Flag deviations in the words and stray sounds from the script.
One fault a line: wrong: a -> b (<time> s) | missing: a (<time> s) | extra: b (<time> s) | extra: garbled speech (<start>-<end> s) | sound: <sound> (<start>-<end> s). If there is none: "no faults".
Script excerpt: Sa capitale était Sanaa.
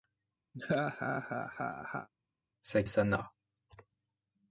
sound: laugh (0.5-2.1 s)
missing: capitale était (2.8 s)